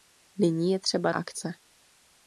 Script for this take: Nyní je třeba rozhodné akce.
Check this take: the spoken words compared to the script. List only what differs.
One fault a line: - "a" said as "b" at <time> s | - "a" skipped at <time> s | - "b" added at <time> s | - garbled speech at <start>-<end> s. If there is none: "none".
- "rozhodné" skipped at 1.1 s